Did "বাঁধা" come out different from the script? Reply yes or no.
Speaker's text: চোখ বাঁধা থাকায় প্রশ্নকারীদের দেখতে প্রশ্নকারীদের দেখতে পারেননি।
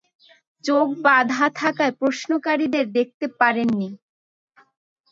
no